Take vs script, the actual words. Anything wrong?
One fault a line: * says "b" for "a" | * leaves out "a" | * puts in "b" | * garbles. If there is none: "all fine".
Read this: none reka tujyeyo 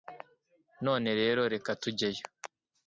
* puts in "rero"